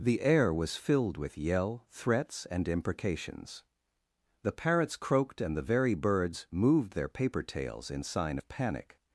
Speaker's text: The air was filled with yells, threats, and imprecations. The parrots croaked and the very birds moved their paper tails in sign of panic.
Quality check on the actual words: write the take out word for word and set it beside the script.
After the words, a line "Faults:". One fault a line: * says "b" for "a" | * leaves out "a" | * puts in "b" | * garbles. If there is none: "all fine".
The air was filled with yell, threats, and imprecations. The parrots croaked and the very birds moved their paper tails in sign of panic.
Faults:
* says "yell" for "yells"